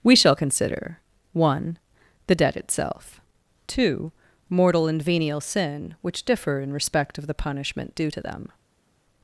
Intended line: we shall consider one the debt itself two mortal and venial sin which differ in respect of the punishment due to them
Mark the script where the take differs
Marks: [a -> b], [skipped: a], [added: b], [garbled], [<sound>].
we shall consider one the debt itself two mortal and venial sin which differ in respect of the punishment due to them